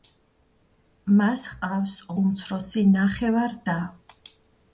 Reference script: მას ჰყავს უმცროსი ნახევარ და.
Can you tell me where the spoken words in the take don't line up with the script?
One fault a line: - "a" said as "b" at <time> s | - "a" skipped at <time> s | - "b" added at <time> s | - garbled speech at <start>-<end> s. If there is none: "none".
none